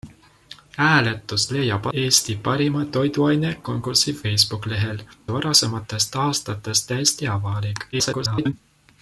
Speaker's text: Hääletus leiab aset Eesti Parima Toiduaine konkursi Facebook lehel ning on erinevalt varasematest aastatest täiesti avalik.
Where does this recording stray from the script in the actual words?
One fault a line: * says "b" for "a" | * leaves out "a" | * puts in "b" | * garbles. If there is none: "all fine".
* leaves out "aset"
* leaves out "ning on erinevalt"
* garbles